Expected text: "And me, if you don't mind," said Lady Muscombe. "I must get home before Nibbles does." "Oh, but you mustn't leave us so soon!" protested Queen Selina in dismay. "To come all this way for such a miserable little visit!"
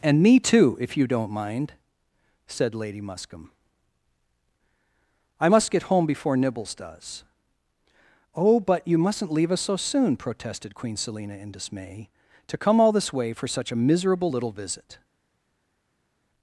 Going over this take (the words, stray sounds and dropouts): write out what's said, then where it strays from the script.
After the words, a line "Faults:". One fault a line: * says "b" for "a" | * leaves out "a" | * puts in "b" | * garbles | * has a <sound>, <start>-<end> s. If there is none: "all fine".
"And me, too, if you don't mind," said Lady Muscombe. "I must get home before Nibbles does." "Oh, but you mustn't leave us so soon!" protested Queen Selina in dismay. "To come all this way for such a miserable little visit!"
Faults:
* puts in "too"